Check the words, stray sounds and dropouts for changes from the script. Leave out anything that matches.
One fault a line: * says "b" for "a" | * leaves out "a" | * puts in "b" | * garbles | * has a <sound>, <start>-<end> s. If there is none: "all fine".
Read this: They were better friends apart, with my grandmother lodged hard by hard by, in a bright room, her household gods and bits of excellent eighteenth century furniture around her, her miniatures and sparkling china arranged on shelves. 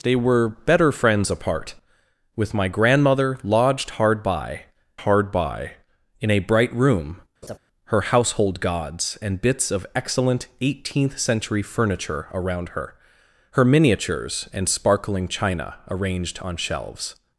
* has a laugh, 7.4-7.6 s